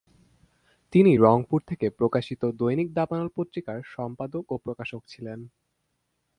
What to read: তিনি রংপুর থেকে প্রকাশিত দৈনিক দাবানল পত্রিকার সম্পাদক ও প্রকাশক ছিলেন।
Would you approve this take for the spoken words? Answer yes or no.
yes